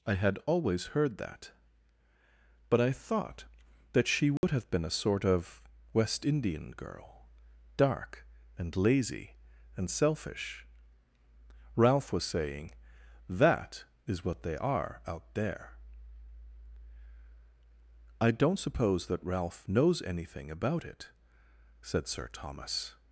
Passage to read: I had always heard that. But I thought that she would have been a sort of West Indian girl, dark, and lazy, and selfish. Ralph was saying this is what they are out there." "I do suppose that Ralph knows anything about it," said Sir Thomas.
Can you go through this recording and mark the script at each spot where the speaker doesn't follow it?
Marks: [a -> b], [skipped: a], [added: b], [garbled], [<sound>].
I had always heard that. But I thought that she would [dropout] have been a sort of West Indian girl, dark, and lazy, and selfish. Ralph was saying [this -> that] is what they are out there." "I [do -> don't] suppose that Ralph knows anything about it," said Sir Thomas.